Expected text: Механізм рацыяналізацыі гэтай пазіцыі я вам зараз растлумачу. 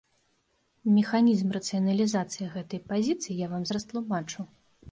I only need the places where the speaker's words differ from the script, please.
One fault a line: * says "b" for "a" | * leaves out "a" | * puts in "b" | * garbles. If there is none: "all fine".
* leaves out "зараз"